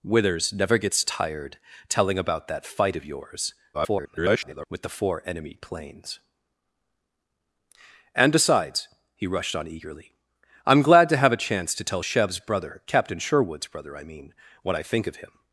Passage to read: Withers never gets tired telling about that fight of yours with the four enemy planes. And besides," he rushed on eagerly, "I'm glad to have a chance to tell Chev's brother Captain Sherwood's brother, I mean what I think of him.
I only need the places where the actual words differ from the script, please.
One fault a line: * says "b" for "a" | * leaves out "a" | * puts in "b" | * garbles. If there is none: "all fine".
* garbles